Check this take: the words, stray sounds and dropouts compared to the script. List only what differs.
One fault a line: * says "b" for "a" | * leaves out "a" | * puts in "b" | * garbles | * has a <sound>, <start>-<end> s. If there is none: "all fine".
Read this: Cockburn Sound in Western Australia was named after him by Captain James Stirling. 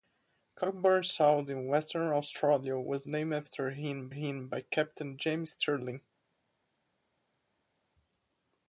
* puts in "him"